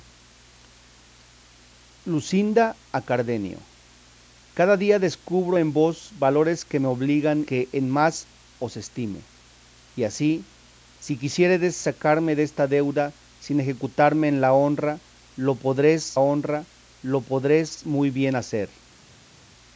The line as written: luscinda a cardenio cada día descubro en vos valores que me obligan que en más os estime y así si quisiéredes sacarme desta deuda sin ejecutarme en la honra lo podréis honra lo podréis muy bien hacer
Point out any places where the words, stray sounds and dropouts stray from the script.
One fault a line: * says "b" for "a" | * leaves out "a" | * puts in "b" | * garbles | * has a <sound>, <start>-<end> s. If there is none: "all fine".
all fine